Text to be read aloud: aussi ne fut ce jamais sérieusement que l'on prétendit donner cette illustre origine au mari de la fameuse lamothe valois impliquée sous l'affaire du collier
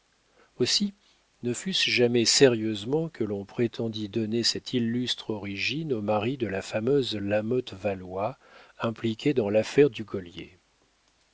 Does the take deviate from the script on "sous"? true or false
true